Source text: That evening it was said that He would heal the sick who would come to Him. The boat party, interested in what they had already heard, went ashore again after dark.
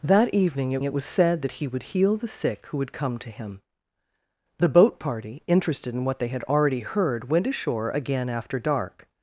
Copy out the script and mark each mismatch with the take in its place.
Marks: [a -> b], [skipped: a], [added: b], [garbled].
That evening it [added: it] was said that He would heal the sick who would come to Him. The boat party, interested in what they had already heard, went ashore again after dark.